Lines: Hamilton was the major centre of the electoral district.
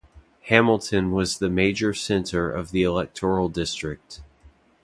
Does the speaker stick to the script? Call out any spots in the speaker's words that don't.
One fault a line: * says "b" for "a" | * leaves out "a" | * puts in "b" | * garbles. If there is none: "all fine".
all fine